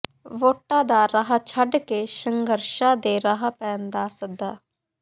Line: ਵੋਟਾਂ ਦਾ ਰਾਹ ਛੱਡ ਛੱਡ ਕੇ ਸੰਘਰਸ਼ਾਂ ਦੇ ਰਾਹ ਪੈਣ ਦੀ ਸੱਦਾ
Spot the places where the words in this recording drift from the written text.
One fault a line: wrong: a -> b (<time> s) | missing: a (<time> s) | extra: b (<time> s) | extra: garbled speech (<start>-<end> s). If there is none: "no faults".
missing: ਛੱਡ (1.8 s)
wrong: ਦੀ -> ਦਾ (3.9 s)